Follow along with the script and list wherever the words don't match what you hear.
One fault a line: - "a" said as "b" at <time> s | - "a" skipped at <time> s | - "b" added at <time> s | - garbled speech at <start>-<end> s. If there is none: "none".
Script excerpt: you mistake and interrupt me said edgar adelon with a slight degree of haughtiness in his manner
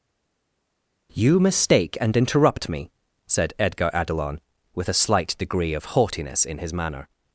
none